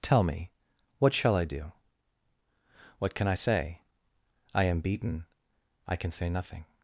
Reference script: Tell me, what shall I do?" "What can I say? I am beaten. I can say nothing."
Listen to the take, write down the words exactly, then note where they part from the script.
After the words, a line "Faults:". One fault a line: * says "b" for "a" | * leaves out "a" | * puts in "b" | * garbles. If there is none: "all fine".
Tell me, what shall I do?" "What can I say? I am beaten. I can say nothing."
Faults:
all fine